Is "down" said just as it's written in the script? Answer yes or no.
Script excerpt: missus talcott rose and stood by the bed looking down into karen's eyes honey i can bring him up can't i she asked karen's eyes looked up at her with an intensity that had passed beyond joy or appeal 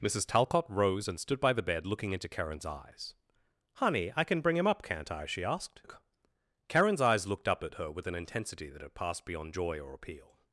no